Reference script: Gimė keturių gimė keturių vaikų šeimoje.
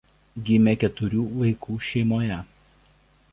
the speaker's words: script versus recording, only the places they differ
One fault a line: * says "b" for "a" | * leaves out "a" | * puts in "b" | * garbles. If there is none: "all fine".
* leaves out "gimė keturių"